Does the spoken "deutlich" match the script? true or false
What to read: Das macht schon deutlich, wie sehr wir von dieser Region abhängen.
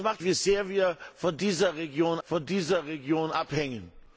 false